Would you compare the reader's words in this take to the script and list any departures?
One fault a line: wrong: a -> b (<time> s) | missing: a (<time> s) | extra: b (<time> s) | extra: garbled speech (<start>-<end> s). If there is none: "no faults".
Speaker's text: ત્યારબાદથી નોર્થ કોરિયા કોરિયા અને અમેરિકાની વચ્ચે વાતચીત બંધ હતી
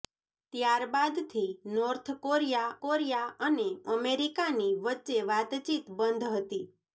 no faults